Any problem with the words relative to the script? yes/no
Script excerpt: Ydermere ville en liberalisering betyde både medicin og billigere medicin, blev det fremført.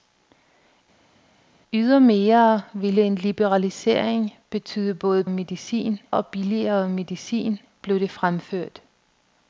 no